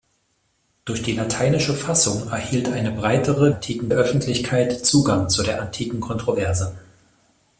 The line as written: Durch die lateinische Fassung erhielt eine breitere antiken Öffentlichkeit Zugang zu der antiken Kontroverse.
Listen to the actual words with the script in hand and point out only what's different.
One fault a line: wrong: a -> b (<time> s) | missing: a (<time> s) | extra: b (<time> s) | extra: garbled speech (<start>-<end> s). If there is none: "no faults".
no faults